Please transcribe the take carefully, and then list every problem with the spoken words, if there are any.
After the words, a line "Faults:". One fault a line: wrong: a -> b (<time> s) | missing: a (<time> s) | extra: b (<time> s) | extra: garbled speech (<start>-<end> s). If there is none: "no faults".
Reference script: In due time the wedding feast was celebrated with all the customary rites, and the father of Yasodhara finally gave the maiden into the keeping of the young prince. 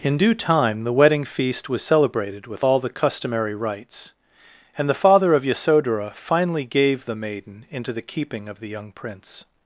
In due time the wedding feast was celebrated with all the customary rites, and the father of Yasodhara finally gave the maiden into the keeping of the young prince.
Faults:
no faults